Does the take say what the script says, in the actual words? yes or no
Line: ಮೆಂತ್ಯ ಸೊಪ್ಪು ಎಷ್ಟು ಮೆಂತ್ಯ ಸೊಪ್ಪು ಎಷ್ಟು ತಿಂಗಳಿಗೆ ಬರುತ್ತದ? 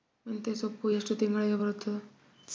no